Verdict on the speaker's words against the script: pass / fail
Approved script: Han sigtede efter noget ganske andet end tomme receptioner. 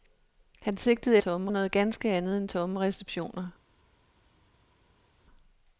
fail